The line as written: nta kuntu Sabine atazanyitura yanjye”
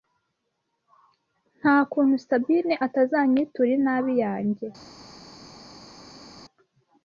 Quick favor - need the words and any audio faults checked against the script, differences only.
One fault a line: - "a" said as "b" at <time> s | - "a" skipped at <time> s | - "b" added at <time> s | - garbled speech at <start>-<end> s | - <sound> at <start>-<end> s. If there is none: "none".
- "inabi" added at 3.8 s